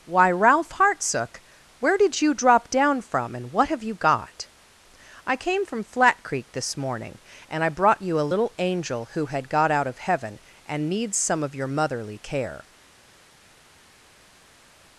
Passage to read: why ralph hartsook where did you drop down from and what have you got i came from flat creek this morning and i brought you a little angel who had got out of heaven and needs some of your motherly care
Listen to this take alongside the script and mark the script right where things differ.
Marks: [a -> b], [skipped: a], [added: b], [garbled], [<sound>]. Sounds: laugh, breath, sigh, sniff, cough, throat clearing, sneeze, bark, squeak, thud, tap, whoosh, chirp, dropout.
why ralph hartsook where did you drop down from and what have you got i came from flat creek this morning and i brought you a little angel who had got out of heaven and needs some of your motherly care